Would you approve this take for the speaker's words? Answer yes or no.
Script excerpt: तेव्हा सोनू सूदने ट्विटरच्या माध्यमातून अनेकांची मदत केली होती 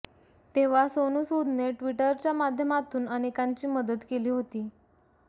yes